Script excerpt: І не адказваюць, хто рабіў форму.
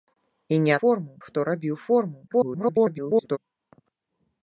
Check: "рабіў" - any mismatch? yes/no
no